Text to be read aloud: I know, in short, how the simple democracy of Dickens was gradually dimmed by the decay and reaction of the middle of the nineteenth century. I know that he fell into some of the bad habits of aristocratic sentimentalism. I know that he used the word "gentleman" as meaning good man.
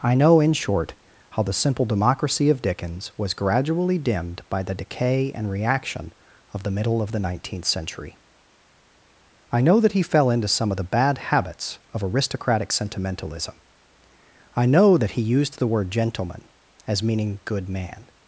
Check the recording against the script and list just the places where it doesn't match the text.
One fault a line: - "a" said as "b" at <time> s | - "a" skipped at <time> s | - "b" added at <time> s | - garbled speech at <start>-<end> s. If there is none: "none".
none